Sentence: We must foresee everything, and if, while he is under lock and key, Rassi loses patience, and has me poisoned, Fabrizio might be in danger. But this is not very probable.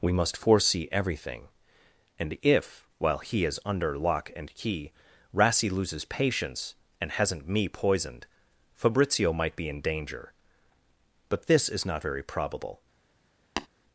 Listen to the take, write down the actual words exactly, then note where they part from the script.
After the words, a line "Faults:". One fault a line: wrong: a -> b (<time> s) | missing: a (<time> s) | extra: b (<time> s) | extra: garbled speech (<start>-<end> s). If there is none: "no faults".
We must foresee everything, and if, while he is under lock and key, Rassi loses patience, and hasn't me poisoned, Fabrizio might be in danger. But this is not very probable.
Faults:
wrong: has -> hasn't (7.1 s)